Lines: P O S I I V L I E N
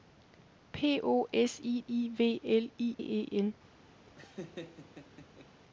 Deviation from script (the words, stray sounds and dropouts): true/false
true